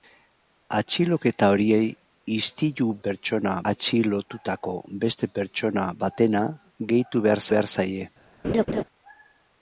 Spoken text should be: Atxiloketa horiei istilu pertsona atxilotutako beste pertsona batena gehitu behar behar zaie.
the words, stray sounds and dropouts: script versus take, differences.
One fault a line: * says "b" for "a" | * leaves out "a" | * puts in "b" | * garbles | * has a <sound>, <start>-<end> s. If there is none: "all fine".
* has a laugh, 8.4-8.8 s